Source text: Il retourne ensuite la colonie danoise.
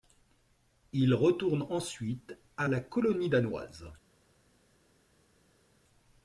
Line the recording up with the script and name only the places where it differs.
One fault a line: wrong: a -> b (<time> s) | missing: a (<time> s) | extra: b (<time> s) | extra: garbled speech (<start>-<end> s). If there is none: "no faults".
extra: à (2.6 s)